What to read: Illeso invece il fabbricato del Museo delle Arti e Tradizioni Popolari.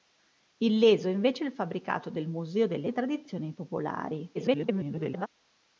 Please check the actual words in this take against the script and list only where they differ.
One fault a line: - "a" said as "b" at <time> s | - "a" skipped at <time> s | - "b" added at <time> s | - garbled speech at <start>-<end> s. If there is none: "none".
- "Arti" skipped at 2.9 s
- garbled speech at 4.3-5.3 s